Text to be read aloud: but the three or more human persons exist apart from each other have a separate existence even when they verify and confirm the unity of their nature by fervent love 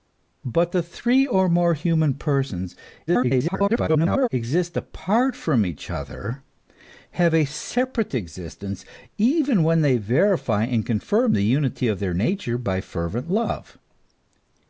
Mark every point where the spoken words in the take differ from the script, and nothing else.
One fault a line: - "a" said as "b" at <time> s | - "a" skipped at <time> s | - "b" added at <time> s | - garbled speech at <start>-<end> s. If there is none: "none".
- garbled speech at 3.1-4.3 s